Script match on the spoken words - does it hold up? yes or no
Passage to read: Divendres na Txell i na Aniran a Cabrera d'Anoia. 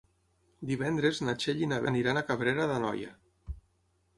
yes